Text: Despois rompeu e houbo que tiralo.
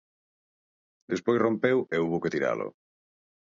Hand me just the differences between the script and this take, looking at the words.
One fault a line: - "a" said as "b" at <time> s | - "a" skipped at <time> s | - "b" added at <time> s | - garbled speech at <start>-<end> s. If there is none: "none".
none